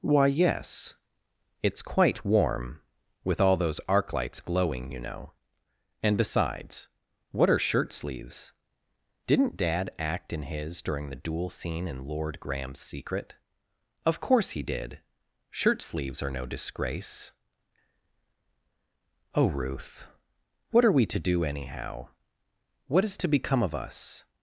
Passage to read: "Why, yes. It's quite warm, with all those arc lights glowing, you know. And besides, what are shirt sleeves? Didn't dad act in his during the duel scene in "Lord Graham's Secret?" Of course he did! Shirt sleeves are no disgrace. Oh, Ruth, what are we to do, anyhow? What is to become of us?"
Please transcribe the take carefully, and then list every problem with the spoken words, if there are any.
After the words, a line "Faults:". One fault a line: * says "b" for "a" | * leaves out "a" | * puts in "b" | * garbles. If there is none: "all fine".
"Why, yes. It's quite warm, with all those arc lights glowing, you know. And besides, what are shirt sleeves? Didn't dad act in his during the duel scene in "Lord Graham's Secret?" Of course he did! Shirt sleeves are no disgrace. Oh, Ruth, what are we to do, anyhow? What is to become of us?"
Faults:
all fine